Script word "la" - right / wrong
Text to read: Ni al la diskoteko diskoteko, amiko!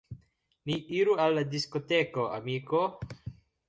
right